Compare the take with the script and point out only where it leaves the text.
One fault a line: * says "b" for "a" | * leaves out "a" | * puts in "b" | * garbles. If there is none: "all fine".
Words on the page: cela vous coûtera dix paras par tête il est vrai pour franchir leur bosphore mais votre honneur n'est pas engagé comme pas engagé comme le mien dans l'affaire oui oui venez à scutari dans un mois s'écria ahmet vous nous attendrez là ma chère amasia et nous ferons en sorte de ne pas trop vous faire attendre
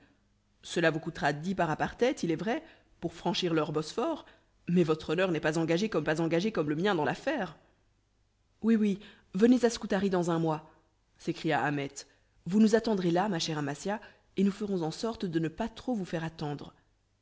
all fine